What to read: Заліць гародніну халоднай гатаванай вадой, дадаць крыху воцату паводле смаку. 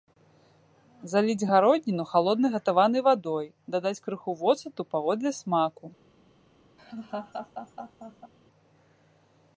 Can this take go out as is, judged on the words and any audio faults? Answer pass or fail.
fail